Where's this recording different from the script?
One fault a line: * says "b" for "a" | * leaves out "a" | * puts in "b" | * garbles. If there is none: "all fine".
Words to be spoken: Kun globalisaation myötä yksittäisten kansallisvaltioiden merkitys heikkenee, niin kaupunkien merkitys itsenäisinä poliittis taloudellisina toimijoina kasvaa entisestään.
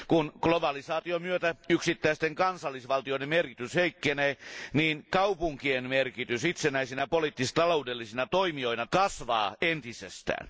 all fine